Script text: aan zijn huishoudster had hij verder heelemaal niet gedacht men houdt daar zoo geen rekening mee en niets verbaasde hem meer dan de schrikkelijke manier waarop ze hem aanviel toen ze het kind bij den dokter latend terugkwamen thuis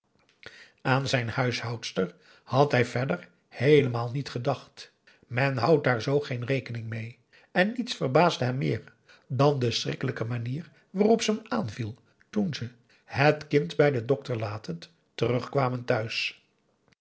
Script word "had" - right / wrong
right